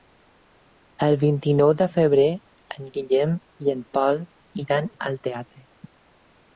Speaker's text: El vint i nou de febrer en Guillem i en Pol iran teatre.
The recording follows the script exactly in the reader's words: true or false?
false